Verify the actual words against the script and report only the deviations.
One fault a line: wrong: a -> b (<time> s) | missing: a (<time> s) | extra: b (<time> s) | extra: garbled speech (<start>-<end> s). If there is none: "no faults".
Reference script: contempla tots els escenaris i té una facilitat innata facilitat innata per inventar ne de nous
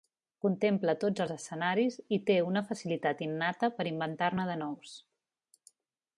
missing: facilitat innata (3.7 s)